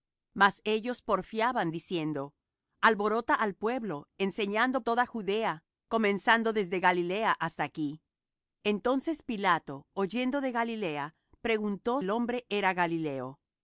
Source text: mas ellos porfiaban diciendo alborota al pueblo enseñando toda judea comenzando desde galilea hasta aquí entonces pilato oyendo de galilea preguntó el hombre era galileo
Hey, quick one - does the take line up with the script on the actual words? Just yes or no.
yes